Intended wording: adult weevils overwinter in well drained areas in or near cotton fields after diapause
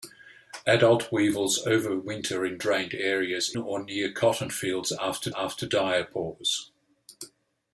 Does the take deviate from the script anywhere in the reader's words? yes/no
yes